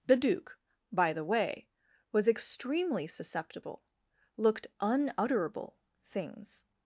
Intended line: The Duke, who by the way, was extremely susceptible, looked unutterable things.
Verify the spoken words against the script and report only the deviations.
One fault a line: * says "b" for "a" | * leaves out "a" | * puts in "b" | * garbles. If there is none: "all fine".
* leaves out "who"